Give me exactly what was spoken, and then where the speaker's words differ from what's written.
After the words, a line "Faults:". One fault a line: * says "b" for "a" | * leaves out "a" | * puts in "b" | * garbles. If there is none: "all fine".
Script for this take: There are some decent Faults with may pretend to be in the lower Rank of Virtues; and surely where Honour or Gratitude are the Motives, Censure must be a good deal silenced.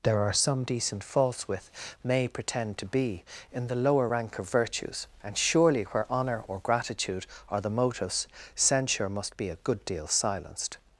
There are some decent Faults with may pretend to be in the lower Rank of Virtues; and surely where Honour or Gratitude are the Motives, Censure must be a good deal silenced.
Faults:
all fine